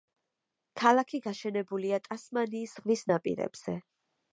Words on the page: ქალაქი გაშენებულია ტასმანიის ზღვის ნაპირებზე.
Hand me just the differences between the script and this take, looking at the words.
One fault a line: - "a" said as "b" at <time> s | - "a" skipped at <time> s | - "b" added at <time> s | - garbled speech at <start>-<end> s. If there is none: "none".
none